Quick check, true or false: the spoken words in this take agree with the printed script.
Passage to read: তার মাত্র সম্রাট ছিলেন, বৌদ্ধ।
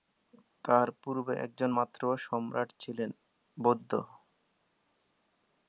false